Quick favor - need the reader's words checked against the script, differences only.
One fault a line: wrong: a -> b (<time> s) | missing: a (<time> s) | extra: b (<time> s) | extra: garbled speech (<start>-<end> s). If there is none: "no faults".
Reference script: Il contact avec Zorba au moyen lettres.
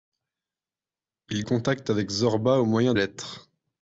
no faults